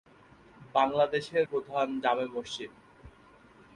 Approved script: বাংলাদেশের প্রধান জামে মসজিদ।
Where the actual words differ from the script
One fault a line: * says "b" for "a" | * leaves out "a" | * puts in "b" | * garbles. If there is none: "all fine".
all fine